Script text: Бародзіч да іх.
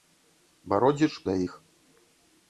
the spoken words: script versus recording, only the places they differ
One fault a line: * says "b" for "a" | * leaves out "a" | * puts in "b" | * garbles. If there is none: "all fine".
all fine